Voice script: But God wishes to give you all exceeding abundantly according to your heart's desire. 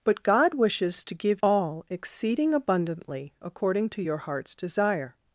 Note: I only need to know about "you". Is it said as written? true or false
false